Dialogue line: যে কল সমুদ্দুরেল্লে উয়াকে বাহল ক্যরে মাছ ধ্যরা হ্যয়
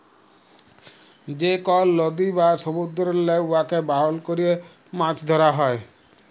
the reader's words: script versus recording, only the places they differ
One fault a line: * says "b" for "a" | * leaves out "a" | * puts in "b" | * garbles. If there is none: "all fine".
* puts in "লদী বা"